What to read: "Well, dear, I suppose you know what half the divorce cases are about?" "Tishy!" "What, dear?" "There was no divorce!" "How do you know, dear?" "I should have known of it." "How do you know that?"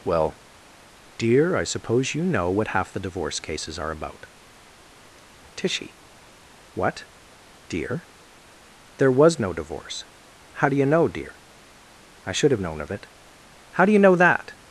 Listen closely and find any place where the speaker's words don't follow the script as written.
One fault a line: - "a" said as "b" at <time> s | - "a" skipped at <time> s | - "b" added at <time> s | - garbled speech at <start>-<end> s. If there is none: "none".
none